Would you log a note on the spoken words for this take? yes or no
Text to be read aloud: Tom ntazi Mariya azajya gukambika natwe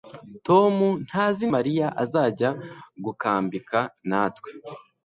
no